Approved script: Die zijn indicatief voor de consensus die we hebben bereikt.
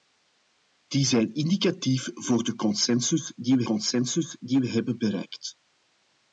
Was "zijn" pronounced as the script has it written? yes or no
yes